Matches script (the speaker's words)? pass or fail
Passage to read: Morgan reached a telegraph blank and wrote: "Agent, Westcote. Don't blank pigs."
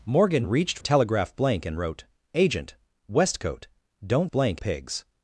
pass